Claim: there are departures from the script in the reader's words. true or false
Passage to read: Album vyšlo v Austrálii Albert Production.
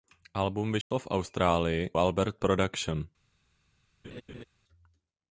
false